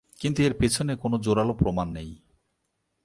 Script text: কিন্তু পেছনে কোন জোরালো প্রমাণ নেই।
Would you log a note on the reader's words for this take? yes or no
yes